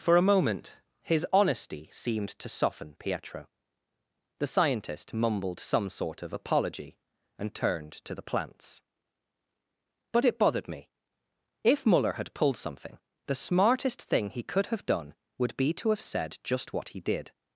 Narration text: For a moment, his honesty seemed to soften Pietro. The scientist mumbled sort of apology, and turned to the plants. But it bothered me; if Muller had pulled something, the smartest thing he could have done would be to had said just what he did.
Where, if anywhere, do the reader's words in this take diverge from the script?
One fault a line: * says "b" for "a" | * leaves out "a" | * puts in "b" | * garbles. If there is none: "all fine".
* puts in "some"
* says "have" for "had"